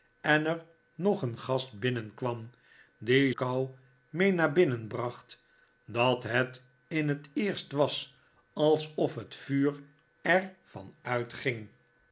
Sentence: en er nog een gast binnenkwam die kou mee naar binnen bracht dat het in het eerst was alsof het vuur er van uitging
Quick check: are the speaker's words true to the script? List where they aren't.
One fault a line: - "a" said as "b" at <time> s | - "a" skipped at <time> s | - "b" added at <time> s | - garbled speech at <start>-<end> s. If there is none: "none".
none